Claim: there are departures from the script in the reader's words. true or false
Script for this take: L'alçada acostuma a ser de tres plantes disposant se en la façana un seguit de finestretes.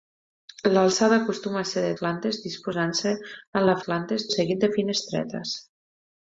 true